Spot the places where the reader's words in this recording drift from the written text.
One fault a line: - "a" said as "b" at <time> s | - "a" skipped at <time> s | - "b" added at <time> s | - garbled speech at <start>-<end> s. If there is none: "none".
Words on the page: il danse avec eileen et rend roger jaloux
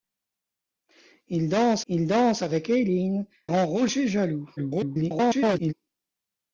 - "il danse" added at 1.9 s
- "et" skipped at 3.3 s
- garbled speech at 4.6-5.7 s